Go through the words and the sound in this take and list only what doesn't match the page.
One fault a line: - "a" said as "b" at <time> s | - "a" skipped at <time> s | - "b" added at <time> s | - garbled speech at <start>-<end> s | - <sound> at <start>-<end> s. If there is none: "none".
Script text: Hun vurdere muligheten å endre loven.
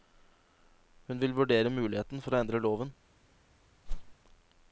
- "vil" added at 1.2 s
- "for" added at 2.2 s
- whoosh at 3.9-4.1 s